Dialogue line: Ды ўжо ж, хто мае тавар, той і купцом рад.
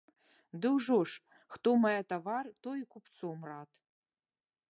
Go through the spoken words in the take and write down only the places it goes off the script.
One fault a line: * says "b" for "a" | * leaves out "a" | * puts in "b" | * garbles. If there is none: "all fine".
all fine